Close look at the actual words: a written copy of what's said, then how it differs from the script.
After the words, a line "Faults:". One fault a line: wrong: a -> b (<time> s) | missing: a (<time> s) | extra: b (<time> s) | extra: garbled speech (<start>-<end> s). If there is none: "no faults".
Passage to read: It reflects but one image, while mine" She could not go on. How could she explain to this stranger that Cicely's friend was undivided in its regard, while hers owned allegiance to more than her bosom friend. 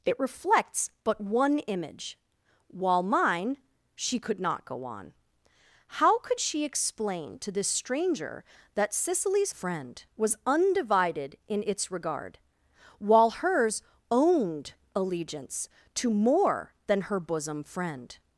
It reflects but one image, while mine" She could not go on. How could she explain to this stranger that Cicely's friend was undivided in its regard, while hers owned allegiance to more than her bosom friend.
Faults:
no faults